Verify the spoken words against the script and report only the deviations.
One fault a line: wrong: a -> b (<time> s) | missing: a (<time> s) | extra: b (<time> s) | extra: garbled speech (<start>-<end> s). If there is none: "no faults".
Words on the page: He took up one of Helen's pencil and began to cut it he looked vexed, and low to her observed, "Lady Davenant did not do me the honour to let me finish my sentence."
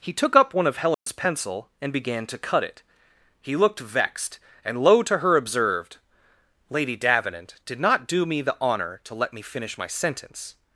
no faults